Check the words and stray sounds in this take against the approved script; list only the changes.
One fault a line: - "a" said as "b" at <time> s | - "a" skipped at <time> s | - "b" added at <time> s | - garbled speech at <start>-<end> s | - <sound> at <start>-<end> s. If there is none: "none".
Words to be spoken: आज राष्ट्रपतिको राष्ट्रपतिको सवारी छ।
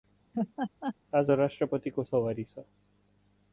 - laugh at 0.3-1.0 s
- "राष्ट्रपतिको" skipped at 2.0 s